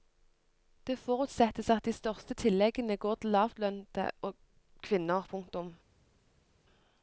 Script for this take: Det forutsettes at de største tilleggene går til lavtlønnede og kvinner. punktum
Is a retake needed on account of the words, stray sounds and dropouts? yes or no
no